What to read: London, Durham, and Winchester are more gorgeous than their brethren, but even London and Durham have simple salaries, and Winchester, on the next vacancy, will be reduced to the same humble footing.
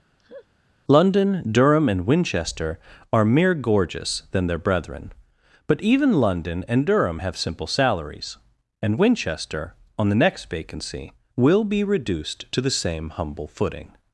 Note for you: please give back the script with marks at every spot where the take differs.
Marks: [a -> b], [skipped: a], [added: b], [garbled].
London, Durham, and Winchester are [more -> mere] gorgeous than their brethren, but even London and Durham have simple salaries, and Winchester, on the next vacancy, will be reduced to the same humble footing.